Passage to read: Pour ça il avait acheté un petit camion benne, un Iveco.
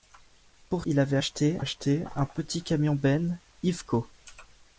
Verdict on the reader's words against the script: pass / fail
fail